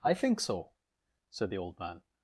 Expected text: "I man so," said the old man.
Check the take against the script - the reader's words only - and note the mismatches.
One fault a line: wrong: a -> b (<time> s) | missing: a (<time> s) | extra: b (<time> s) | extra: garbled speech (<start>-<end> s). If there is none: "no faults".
wrong: man -> think (0.1 s)